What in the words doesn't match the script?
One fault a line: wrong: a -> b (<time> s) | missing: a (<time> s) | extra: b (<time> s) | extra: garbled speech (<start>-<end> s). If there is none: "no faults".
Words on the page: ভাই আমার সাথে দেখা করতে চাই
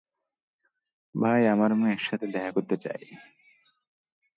extra: মেয়ের (1.8 s)